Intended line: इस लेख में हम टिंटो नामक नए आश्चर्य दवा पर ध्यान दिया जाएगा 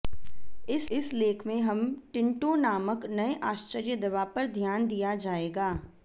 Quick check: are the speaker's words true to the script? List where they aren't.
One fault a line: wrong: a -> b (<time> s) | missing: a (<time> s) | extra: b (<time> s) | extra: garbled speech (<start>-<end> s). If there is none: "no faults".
extra: इस (0.9 s)